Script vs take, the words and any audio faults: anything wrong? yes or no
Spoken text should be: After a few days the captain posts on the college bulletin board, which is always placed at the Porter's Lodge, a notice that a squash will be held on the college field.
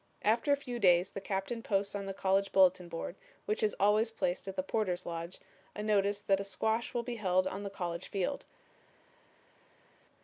no